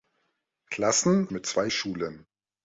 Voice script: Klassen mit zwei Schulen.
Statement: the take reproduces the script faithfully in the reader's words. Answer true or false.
true